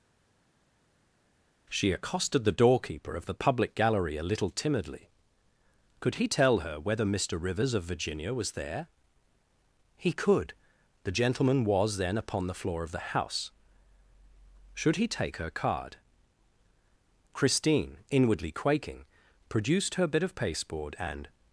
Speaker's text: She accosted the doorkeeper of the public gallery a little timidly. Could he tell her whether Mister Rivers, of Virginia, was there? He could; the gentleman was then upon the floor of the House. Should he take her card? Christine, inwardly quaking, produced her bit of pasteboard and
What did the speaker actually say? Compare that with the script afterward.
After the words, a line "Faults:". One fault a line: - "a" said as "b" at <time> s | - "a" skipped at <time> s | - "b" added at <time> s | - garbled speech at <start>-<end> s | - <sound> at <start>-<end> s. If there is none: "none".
She accosted the doorkeeper of the public gallery a little timidly. Could he tell her whether Mister Rivers, of Virginia, was there? He could; the gentleman was then upon the floor of the House. Should he take her card? Christine, inwardly quaking, produced her bit of pasteboard and
Faults:
none